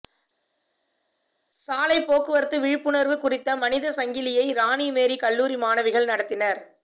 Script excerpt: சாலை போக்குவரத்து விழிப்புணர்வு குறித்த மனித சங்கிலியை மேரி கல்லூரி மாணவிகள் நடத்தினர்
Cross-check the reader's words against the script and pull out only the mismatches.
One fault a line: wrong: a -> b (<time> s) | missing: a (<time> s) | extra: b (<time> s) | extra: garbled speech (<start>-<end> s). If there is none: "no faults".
extra: ராணி (4.5 s)